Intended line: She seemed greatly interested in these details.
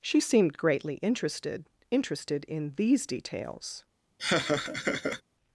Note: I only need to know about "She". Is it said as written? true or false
true